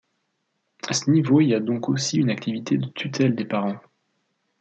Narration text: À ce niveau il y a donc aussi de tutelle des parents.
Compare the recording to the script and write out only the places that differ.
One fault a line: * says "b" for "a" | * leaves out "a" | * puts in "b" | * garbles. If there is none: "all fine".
* puts in "une activité"